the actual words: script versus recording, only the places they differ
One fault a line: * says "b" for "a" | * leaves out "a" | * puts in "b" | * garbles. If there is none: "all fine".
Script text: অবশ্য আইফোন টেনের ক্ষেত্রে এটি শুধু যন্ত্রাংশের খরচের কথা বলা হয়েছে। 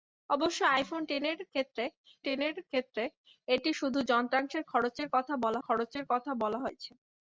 * puts in "টেনের ক্ষেত্রে"
* puts in "খরচের কথা বলা"